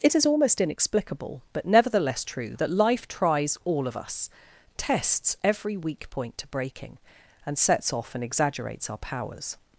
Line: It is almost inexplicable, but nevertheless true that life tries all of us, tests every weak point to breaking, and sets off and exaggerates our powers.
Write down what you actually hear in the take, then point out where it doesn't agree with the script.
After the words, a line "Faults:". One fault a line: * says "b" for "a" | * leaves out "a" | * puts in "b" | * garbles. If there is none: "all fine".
It is almost inexplicable, but nevertheless true that life tries all of us, tests every weak point to breaking, and sets off and exaggerates our powers.
Faults:
all fine